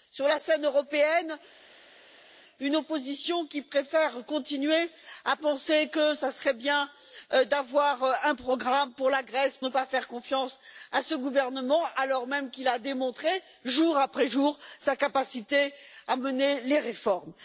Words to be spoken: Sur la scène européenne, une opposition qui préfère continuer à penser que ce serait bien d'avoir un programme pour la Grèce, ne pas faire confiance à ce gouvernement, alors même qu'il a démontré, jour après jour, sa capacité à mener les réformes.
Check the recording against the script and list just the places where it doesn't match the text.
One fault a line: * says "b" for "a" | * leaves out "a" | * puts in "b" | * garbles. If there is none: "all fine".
all fine